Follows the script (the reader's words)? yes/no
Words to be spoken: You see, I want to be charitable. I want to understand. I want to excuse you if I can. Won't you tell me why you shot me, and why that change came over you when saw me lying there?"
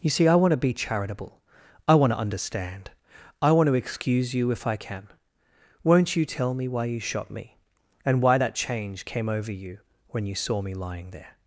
no